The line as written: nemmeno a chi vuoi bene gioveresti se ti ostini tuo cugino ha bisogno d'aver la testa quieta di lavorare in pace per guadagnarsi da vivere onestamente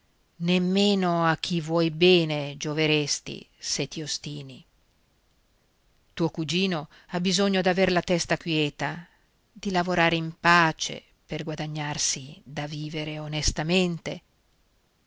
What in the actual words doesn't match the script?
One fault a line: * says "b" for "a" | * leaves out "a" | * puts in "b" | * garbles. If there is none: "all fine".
all fine